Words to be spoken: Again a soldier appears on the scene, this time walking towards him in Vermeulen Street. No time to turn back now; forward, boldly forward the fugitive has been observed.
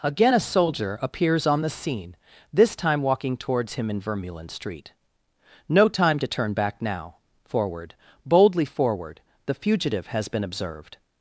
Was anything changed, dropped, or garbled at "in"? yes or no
no